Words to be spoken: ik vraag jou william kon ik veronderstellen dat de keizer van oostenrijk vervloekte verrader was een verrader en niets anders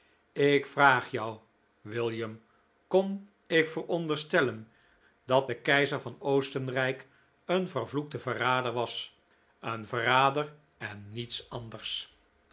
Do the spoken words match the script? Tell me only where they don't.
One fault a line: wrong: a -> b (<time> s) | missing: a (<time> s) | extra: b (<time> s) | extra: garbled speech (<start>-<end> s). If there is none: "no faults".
extra: een (7.5 s)